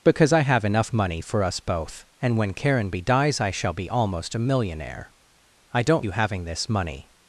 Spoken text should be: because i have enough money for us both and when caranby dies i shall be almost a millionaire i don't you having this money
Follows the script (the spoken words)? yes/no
yes